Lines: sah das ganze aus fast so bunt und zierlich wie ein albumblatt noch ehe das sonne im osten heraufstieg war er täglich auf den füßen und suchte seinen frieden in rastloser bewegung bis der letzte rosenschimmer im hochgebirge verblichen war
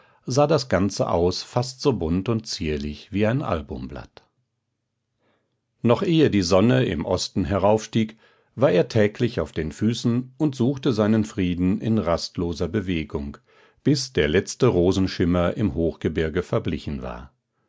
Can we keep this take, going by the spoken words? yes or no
no